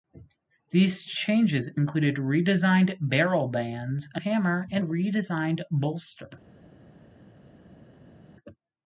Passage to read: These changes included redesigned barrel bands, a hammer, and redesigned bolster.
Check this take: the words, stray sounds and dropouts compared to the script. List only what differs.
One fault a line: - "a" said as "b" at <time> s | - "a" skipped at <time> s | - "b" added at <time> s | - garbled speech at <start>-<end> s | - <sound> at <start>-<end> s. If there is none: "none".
none